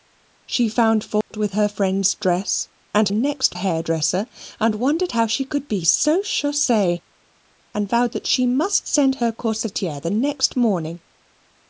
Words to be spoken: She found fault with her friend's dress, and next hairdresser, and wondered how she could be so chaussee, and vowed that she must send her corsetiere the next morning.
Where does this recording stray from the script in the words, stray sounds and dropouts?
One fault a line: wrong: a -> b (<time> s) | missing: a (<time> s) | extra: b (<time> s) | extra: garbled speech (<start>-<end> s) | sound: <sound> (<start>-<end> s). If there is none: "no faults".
sound: dropout (1.2-1.3 s)